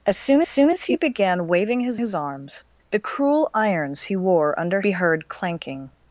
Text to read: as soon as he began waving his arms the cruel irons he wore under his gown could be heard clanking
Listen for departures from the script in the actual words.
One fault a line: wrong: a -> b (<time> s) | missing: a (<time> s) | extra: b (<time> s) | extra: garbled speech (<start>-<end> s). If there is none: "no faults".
extra: soon (0.5 s)
extra: his (1.9 s)
missing: his gown could (4.8 s)